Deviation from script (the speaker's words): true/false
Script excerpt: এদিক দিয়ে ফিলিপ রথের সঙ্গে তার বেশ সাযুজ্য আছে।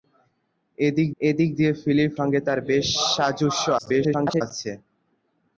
true